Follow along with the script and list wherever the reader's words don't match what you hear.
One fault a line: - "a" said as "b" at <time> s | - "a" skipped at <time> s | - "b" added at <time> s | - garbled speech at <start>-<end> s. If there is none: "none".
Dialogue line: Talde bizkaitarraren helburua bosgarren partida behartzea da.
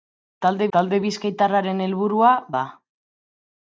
- "talde" added at 0.8 s
- "bosgarren partida behartzea" skipped at 2.3 s